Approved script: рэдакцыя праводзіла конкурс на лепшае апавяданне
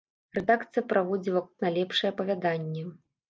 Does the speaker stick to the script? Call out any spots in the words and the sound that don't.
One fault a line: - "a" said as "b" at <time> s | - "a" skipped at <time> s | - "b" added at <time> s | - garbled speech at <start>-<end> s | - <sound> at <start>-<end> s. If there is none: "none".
- "конкурс" skipped at 1.4 s